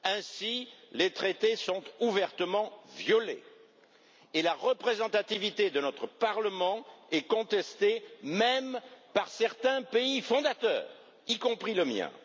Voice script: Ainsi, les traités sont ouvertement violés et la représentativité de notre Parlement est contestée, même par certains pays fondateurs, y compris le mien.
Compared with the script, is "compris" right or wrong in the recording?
right